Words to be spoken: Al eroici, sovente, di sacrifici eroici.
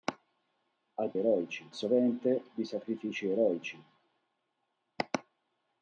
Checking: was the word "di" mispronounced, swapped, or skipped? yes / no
no